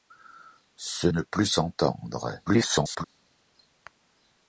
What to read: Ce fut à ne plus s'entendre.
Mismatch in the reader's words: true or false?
true